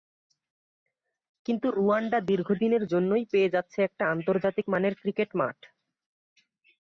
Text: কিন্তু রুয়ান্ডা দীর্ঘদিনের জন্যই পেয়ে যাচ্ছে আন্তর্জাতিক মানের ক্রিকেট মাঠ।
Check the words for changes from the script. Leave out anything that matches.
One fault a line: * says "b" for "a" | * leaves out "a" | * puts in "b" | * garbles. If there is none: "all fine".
* puts in "একটা"